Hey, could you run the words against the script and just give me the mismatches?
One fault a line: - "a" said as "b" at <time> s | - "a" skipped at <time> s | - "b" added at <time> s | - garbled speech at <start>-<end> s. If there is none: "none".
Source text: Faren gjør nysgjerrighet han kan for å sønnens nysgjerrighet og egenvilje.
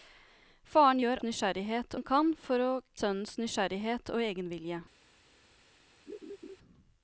none